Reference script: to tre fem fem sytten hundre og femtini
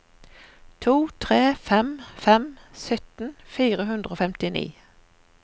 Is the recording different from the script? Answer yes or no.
yes